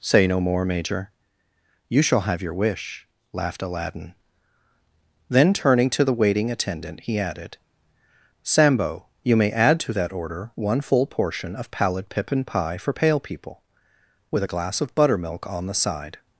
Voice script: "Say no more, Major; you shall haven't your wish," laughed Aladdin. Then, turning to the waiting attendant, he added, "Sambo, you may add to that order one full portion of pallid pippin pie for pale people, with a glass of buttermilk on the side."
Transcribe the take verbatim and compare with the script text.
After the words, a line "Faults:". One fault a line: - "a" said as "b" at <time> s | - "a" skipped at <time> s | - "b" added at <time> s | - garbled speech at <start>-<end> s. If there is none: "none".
"Say no more, Major; you shall have your wish," laughed Aladdin. Then, turning to the waiting attendant, he added, "Sambo, you may add to that order one full portion of pallid pippin pie for pale people, with a glass of buttermilk on the side."
Faults:
- "haven't" said as "have" at 2.2 s